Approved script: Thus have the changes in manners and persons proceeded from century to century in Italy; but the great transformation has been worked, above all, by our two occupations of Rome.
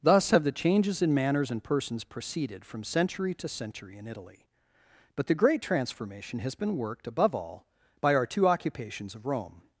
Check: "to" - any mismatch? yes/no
no